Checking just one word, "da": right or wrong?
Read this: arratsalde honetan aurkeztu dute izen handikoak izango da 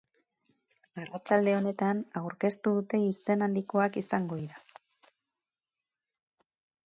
wrong